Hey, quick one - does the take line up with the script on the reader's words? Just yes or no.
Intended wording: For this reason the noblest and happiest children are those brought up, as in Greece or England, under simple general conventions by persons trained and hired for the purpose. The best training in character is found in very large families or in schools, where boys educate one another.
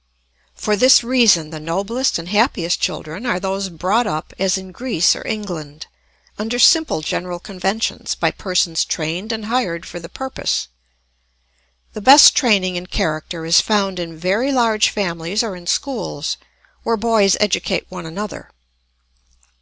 yes